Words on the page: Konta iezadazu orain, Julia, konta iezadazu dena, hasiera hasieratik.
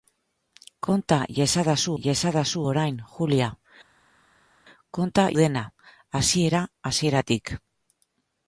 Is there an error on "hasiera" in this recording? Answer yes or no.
no